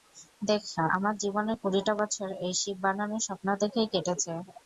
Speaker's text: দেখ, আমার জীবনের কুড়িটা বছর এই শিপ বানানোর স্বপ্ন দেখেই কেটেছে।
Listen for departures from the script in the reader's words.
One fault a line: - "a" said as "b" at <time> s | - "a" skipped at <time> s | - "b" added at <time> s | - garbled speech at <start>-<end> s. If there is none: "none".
none